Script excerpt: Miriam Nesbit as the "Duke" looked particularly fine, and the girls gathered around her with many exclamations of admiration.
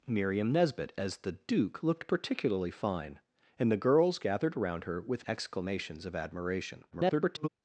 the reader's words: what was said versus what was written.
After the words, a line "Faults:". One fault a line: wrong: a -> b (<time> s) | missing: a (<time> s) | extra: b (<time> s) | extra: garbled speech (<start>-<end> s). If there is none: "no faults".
Miriam Nesbit as the "Duke" looked particularly fine, and the girls gathered around her with exclamations of admiration. [garbled]
Faults:
missing: many (5.3 s)
extra: garbled speech (6.9-7.5 s)